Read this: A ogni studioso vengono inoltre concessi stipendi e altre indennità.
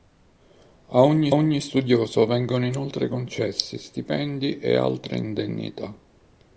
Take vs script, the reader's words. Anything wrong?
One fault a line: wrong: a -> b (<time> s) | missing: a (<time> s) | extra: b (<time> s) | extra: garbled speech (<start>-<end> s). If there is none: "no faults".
extra: ogni (1.3 s)